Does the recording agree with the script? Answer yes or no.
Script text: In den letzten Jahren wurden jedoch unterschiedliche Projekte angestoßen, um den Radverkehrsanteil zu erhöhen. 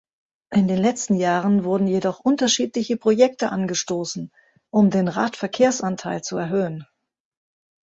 yes